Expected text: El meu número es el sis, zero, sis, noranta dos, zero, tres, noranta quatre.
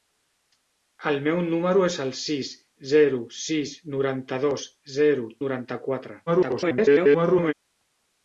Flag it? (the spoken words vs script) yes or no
yes